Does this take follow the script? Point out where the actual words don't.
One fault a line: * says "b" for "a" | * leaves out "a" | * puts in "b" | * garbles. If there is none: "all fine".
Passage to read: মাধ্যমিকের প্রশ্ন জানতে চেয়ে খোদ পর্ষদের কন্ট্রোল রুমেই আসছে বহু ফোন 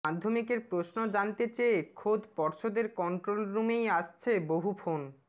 all fine